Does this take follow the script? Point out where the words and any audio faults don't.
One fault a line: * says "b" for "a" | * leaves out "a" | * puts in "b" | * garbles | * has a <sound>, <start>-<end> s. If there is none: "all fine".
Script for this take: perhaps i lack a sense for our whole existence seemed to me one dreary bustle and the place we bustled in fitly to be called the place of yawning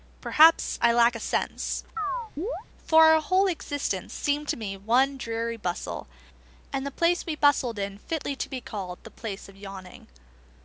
* has a chirp, 2.0-2.6 s